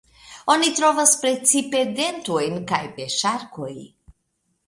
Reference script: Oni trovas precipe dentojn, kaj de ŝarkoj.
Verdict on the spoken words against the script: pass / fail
pass